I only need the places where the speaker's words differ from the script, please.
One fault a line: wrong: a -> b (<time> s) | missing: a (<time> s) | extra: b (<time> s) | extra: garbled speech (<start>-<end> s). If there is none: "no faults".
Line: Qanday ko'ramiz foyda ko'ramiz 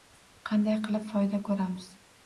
wrong: ko'ramiz -> qilib (0.9 s)